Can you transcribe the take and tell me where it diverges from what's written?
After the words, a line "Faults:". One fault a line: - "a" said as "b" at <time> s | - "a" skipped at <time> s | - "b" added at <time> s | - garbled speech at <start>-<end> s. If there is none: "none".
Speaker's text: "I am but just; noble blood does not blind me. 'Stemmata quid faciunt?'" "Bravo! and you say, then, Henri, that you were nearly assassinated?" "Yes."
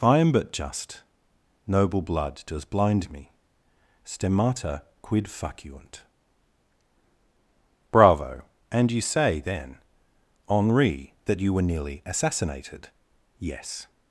"I am but just; noble blood does blind me. 'Stemmata quid faciunt?'" "Bravo! and you say, then, Henri, that you were nearly assassinated?" "Yes."
Faults:
- "not" skipped at 2.6 s